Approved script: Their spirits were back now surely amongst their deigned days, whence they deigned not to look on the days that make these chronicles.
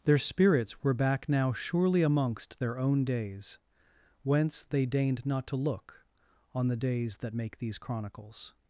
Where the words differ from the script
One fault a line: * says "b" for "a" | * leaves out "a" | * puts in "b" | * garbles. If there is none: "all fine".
* says "own" for "deigned"